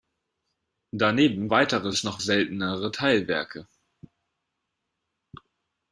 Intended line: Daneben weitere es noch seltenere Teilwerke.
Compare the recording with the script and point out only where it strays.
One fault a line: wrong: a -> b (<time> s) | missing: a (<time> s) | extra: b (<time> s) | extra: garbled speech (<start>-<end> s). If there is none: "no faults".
no faults